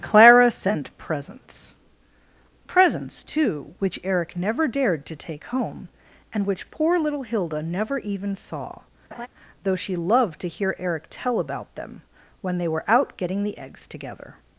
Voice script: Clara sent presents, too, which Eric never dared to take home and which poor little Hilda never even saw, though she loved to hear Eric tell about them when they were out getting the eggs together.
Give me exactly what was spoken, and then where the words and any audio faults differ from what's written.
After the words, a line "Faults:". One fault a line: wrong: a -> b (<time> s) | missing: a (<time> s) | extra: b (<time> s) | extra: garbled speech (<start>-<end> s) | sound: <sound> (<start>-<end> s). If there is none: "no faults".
Clara sent presents presents, too, which Eric never dared to take home and which poor little Hilda never even saw, though she loved to hear Eric tell about them when they were out getting the eggs together.
Faults:
extra: presents (2.6 s)
sound: laugh (9.1-9.3 s)